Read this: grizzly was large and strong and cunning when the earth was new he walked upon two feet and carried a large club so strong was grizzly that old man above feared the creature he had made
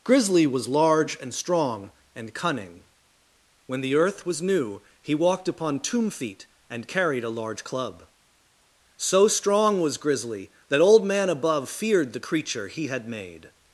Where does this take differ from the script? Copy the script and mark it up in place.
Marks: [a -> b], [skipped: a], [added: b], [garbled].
grizzly was large and strong and cunning when the earth was new he walked upon [two -> tomb] feet and carried a large club so strong was grizzly that old man above feared the creature he had made